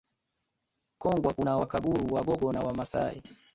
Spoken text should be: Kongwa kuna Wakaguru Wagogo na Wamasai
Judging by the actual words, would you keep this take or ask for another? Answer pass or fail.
pass